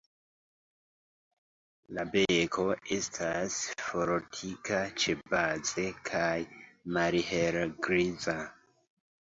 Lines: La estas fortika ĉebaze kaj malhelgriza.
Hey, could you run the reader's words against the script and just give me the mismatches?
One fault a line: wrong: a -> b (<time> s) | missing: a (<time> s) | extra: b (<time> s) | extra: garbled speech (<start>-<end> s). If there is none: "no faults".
extra: beko (2.1 s)